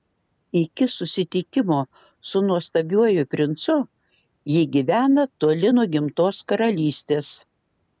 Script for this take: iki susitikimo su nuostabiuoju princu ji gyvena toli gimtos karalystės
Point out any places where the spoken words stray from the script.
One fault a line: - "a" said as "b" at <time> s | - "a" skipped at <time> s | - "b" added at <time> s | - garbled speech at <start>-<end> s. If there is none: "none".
- "nuo" added at 5.7 s